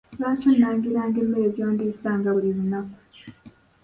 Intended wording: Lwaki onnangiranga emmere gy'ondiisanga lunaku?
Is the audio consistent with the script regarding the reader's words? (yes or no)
no